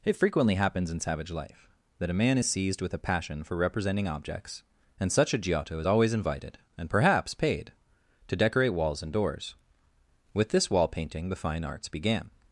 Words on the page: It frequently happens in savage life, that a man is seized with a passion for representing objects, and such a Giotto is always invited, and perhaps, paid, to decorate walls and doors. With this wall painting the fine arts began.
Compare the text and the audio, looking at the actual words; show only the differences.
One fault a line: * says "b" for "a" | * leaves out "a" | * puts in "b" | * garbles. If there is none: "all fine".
all fine